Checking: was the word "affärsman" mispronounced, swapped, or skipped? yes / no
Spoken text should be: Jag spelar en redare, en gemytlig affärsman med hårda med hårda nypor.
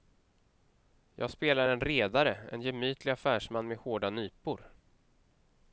no